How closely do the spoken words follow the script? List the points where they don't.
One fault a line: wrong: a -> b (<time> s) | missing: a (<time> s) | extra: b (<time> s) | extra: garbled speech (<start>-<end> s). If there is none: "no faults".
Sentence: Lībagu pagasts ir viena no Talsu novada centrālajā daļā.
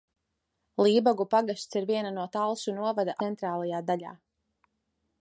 no faults